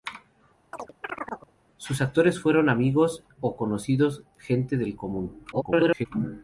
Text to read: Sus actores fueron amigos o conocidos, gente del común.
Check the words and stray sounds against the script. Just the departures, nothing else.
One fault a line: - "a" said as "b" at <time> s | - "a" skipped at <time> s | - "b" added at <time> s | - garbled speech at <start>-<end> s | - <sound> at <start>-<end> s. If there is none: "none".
- chirp at 0.7-1.5 s
- garbled speech at 5.5-6.1 s